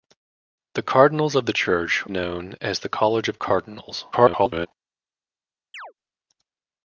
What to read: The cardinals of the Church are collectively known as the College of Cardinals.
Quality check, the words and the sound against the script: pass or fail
fail